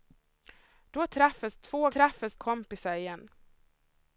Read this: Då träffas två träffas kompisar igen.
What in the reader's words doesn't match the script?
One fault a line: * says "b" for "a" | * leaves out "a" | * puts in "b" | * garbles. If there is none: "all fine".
all fine